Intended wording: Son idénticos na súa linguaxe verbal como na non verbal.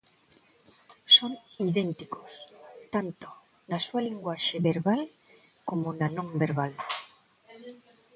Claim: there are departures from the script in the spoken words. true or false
true